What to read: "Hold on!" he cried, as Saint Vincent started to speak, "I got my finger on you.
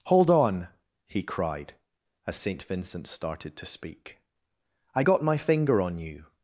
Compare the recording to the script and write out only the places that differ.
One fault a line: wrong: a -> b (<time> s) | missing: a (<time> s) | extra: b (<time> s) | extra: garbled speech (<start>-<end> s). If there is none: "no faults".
no faults